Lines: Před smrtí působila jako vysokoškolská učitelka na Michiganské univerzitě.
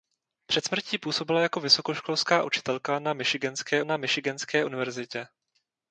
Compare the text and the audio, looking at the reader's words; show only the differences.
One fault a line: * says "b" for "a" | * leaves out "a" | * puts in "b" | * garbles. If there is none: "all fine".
* puts in "na Michiganské"